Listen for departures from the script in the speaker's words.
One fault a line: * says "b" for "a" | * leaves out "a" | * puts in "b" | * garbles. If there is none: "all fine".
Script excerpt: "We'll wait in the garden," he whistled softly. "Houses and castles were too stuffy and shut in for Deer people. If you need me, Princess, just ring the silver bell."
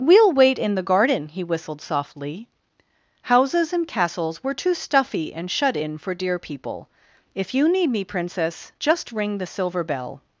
all fine